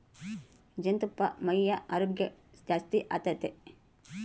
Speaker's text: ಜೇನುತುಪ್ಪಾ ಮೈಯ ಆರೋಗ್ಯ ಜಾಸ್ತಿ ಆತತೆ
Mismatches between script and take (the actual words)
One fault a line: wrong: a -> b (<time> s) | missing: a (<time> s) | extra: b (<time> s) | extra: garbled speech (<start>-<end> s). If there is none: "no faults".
no faults